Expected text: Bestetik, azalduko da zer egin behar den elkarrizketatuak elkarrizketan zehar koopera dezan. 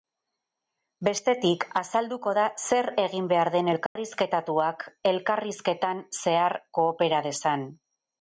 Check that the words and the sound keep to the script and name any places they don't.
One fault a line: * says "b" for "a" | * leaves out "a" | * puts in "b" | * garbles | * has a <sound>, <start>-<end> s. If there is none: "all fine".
* has a dropout, 3.9-4.0 s